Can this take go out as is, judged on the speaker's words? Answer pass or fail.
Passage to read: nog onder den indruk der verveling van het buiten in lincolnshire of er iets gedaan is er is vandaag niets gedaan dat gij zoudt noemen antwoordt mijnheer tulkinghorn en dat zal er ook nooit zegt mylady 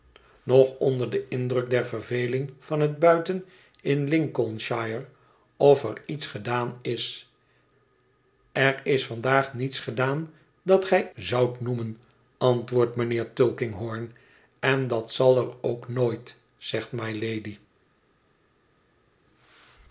pass